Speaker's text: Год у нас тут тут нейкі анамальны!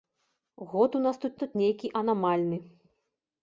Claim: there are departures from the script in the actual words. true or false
false